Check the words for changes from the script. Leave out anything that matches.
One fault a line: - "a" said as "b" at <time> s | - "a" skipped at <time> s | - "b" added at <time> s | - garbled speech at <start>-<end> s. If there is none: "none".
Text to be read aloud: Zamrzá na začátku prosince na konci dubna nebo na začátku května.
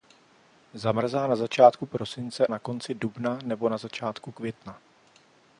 none